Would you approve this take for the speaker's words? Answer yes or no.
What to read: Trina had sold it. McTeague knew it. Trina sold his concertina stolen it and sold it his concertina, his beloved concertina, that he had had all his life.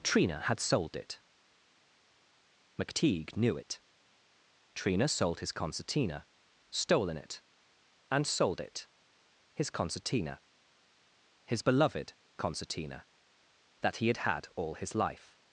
yes